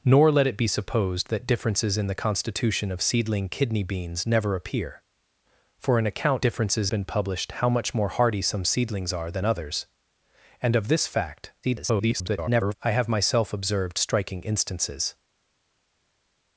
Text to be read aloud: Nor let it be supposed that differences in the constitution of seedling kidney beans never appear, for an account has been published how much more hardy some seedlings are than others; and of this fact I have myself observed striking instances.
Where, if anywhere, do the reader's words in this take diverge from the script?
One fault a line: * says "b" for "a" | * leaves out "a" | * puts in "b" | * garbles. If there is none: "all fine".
* says "differences" for "has"
* garbles